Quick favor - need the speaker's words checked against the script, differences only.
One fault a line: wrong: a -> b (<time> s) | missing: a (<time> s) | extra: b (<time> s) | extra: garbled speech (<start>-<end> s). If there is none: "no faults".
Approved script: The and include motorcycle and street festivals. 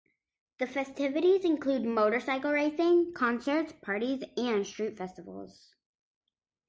wrong: and -> festivities (0.7 s)
extra: racing concerts parties (2.5 s)